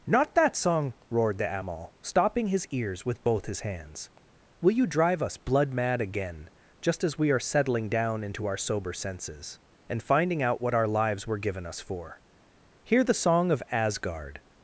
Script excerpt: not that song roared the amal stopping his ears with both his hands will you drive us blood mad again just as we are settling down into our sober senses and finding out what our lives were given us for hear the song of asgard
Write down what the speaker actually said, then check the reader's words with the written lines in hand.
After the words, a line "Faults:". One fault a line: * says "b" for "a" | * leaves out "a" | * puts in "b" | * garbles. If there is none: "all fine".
not that song roared the amal stopping his ears with both his hands will you drive us blood mad again just as we are settling down into our sober senses and finding out what our lives were given us for hear the song of asgard
Faults:
all fine